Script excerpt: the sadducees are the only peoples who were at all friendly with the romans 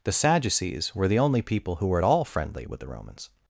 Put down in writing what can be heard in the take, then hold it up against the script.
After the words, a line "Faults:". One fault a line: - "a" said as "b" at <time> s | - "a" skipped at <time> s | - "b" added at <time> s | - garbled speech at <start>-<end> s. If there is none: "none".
the sadducees were the only people who were at all friendly with the romans
Faults:
- "are" said as "were" at 0.9 s
- "peoples" said as "people" at 1.4 s